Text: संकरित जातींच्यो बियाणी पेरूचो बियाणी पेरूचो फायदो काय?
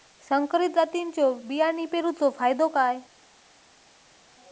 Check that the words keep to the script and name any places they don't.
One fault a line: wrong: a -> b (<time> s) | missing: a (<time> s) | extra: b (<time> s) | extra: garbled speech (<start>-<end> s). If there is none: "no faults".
missing: बियाणी पेरूचो (2.3 s)